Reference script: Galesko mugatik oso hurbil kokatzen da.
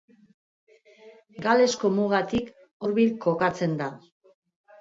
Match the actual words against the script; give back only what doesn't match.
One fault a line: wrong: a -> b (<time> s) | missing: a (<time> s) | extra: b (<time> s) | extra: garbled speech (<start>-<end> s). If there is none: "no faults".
missing: oso (2.5 s)